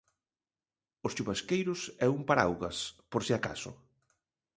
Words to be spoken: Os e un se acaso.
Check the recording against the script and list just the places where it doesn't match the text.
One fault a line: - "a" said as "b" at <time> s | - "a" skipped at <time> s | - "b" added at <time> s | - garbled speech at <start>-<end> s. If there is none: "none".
- "chuvasqueiros" added at 1.1 s
- "paraugas por" added at 2.3 s